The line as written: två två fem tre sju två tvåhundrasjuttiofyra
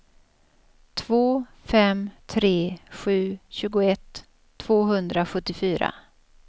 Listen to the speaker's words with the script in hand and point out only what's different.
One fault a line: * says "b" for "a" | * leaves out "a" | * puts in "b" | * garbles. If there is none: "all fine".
* leaves out "två"
* says "tjugoett" for "två"